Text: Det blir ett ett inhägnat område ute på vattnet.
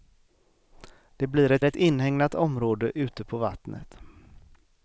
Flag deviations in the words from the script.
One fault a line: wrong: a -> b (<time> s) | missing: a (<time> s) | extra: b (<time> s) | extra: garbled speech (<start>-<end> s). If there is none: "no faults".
no faults